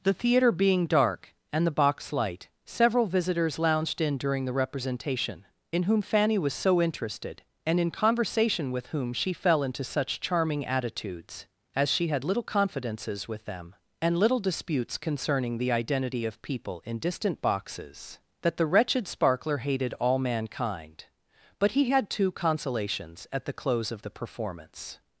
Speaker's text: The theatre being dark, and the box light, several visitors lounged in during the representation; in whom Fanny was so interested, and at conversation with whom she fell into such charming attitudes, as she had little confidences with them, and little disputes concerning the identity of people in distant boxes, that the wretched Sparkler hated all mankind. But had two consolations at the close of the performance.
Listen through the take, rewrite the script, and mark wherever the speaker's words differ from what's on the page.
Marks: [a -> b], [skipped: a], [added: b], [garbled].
The theatre being dark, and the box light, several visitors lounged in during the representation; in whom Fanny was so interested, and [at -> in] conversation with whom she fell into such charming attitudes, as she had little confidences with them, and little disputes concerning the identity of people in distant boxes, that the wretched Sparkler hated all mankind. But [added: he] had two consolations at the close of the performance.